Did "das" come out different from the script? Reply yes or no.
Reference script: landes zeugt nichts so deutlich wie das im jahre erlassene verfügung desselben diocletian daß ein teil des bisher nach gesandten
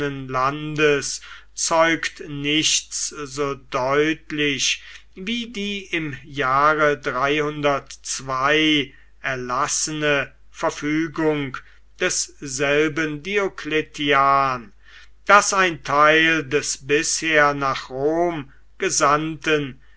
yes